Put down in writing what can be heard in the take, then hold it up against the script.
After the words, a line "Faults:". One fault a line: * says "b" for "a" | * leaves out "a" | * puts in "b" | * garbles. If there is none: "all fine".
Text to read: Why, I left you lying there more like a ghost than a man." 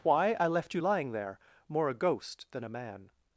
Why, I left you lying there more a ghost than a man."
Faults:
* leaves out "like"